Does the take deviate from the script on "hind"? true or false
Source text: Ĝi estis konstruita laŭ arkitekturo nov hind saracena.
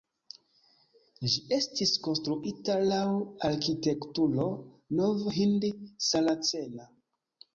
false